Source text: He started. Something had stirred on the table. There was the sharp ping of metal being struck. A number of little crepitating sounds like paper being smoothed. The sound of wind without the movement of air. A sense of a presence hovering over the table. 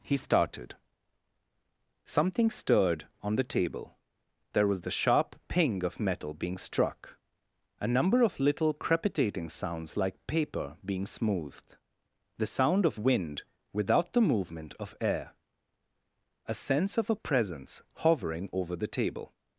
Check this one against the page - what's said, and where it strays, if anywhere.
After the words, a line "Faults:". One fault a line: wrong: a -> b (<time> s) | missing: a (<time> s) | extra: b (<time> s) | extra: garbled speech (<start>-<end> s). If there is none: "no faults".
He started. Something stirred on the table. There was the sharp ping of metal being struck. A number of little crepitating sounds like paper being smoothed. The sound of wind without the movement of air. A sense of a presence hovering over the table.
Faults:
missing: had (2.5 s)